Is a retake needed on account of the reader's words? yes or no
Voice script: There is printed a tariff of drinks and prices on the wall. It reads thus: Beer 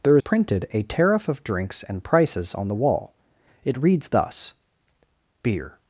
yes